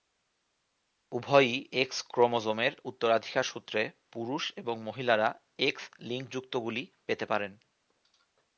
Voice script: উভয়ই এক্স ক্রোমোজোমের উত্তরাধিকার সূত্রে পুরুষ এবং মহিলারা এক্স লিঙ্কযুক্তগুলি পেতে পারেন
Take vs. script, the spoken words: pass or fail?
pass